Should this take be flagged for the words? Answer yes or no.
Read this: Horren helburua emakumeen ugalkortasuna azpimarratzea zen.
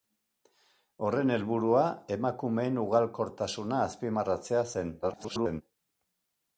yes